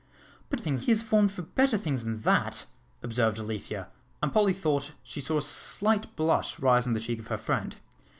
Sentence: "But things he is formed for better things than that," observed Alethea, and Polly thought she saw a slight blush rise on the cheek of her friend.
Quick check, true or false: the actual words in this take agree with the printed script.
true